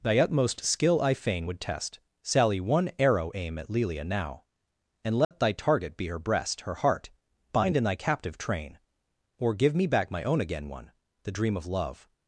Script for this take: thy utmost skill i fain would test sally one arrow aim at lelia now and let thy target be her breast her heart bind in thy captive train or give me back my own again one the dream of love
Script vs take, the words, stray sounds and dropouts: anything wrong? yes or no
yes